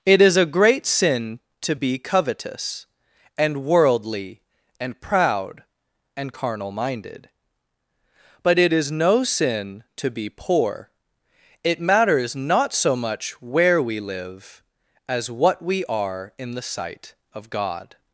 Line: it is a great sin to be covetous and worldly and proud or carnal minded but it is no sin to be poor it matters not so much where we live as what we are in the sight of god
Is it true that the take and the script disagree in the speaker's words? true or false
true